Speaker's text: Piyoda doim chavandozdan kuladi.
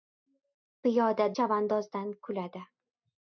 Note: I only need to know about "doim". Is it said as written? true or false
false